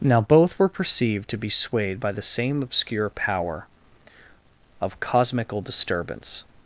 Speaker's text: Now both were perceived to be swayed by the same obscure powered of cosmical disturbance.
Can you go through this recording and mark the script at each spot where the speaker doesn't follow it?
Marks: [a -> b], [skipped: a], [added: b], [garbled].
Now both were perceived to be swayed by the same obscure [powered -> power] of cosmical disturbance.